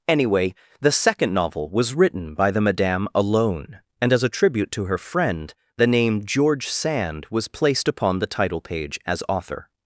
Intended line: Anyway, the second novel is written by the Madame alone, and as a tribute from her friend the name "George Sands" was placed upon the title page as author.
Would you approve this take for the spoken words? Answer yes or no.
no